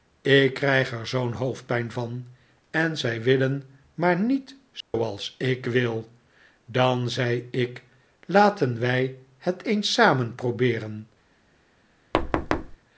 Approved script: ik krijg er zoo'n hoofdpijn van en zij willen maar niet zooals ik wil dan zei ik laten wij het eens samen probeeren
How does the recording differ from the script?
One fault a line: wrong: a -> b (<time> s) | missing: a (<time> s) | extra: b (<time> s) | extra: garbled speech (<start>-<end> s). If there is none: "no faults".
no faults